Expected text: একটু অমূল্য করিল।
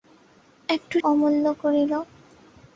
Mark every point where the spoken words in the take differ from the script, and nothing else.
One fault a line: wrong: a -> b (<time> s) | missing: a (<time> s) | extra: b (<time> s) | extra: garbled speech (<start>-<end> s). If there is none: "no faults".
no faults